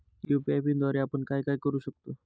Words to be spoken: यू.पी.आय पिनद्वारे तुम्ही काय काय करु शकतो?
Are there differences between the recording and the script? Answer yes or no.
yes